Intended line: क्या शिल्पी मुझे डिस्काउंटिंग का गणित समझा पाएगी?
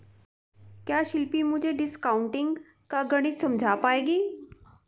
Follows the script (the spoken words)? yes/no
yes